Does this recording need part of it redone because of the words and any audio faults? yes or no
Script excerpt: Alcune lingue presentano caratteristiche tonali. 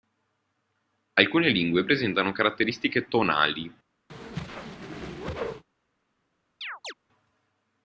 yes